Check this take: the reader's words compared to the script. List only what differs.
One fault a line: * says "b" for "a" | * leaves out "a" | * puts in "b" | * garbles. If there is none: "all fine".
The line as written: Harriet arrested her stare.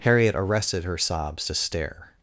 * puts in "sobs to"